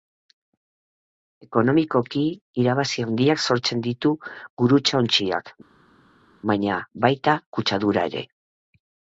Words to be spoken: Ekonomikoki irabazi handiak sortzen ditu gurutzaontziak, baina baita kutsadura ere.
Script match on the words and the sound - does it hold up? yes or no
yes